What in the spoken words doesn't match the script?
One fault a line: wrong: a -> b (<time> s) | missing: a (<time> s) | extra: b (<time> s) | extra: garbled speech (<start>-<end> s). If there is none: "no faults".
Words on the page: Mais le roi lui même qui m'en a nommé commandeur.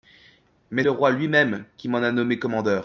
no faults